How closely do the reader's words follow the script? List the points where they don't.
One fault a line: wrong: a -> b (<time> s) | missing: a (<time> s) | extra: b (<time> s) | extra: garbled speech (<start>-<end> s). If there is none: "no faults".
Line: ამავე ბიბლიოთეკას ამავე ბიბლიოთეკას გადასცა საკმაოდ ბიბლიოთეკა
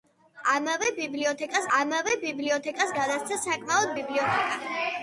no faults